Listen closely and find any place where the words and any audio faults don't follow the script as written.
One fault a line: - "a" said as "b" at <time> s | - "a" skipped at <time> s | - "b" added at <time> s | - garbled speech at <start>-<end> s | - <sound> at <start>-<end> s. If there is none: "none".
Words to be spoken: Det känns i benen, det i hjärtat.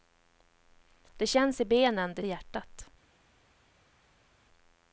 none